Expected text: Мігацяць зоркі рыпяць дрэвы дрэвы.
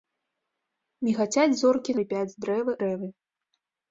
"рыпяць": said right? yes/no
yes